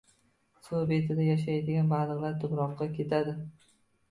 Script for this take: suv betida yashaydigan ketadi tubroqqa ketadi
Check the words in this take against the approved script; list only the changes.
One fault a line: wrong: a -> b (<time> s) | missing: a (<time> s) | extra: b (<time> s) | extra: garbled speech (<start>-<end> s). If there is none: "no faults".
wrong: ketadi -> baliqlar (2.0 s)